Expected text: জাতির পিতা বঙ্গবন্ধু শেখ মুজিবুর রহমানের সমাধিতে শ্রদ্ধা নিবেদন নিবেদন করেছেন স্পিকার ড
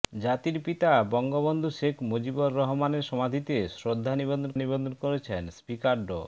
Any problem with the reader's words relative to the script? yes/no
no